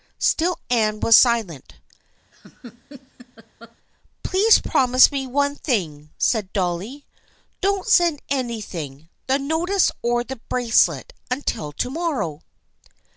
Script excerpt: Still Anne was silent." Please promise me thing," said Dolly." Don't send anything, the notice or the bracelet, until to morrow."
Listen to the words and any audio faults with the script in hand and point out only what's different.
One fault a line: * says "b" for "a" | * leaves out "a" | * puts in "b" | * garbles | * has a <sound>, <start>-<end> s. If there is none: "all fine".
* has a laugh, 2.3-3.8 s
* puts in "one"